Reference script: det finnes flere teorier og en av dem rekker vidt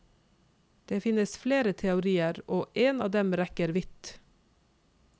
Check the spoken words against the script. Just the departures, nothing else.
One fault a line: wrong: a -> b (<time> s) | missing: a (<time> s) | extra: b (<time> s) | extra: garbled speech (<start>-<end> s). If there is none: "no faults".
no faults